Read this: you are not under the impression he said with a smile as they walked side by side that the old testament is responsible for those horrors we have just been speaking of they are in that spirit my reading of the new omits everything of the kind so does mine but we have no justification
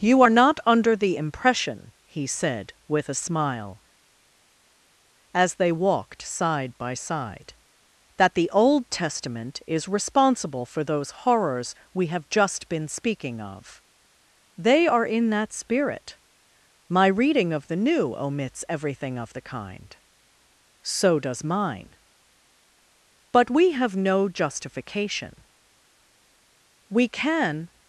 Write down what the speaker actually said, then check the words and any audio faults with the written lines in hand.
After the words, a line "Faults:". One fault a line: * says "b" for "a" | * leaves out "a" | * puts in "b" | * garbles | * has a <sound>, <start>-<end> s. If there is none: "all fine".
you are not under the impression he said with a smile as they walked side by side that the old testament is responsible for those horrors we have just been speaking of they are in that spirit my reading of the new omits everything of the kind so does mine but we have no justification we can
Faults:
* puts in "we can"